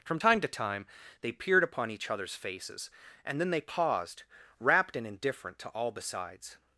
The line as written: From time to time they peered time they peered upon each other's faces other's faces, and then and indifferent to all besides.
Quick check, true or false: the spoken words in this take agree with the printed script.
false